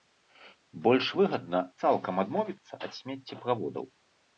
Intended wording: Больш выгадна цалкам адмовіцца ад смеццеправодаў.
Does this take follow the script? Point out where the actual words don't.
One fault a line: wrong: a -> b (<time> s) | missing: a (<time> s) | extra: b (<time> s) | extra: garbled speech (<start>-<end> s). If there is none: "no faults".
no faults